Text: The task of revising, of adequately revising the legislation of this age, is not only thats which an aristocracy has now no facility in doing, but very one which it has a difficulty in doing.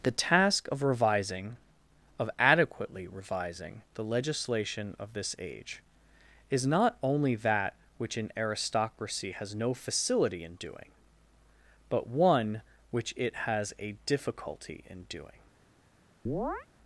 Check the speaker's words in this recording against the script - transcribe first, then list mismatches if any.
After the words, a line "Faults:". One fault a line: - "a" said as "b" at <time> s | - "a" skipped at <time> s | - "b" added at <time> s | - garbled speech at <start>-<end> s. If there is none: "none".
The task of revising, of adequately revising the legislation of this age, is not only that which an aristocracy has no facility in doing, but one which it has a difficulty in doing.
Faults:
- "thats" said as "that" at 7.3 s
- "now" skipped at 9.5 s
- "very" skipped at 12.1 s